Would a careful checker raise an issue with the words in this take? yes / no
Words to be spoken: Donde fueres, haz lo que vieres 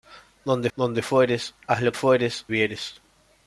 yes